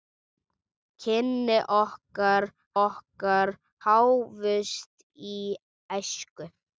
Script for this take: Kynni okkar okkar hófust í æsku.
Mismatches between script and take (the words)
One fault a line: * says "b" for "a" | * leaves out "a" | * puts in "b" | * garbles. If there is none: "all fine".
all fine